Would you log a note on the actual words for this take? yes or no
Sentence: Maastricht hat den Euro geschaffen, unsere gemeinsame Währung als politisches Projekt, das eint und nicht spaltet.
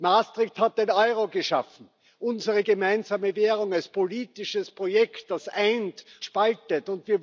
yes